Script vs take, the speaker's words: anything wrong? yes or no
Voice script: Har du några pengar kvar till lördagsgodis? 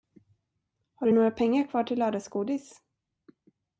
no